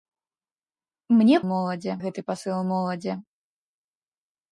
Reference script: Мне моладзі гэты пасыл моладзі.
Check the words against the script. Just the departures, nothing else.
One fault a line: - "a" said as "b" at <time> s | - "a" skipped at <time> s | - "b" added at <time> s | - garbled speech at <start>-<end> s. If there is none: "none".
none